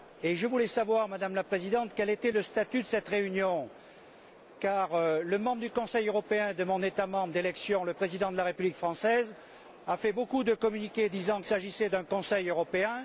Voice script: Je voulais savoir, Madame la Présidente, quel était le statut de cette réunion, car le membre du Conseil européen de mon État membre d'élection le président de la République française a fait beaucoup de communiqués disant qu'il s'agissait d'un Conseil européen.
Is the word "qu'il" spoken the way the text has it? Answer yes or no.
no